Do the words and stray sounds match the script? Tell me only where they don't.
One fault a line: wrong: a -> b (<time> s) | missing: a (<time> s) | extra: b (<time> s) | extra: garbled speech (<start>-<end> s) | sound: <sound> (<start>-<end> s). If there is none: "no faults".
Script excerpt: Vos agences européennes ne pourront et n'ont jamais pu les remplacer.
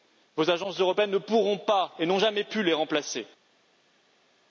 extra: pas (1.6 s)